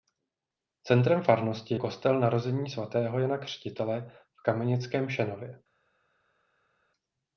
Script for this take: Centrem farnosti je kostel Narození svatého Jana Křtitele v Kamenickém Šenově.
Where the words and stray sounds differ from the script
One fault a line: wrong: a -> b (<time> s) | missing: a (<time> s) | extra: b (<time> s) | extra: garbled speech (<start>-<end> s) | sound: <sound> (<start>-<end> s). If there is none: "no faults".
missing: je (1.8 s)